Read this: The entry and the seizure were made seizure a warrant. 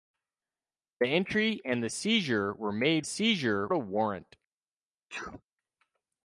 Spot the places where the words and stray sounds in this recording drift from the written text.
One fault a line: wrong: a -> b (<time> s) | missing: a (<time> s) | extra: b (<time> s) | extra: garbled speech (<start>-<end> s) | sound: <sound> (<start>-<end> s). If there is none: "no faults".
sound: sneeze (5.1-5.4 s)